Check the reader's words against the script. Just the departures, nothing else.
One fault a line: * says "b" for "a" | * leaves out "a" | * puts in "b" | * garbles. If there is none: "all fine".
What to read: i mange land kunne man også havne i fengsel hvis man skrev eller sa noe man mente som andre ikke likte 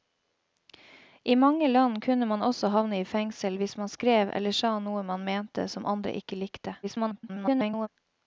* garbles